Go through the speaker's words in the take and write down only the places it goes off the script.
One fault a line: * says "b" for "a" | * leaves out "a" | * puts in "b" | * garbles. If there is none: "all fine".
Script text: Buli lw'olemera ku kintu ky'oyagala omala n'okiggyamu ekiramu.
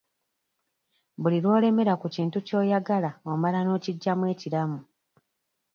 all fine